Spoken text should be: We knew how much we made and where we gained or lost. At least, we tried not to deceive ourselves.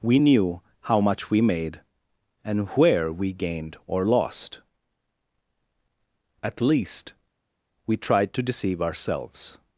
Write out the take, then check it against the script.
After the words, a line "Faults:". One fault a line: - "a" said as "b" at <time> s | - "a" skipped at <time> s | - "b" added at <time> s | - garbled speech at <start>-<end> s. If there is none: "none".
We knew how much we made and where we gained or lost. At least, we tried to deceive ourselves.
Faults:
- "not" skipped at 8.3 s